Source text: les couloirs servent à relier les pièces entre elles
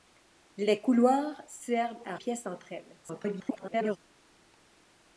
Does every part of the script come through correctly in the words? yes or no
no